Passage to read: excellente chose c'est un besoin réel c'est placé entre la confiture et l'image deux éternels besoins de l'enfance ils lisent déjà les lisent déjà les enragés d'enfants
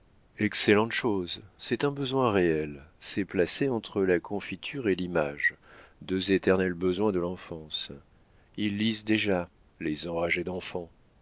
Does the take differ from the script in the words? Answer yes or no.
yes